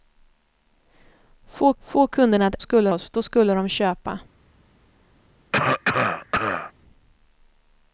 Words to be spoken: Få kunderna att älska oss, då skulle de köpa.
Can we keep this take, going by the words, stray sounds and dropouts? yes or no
no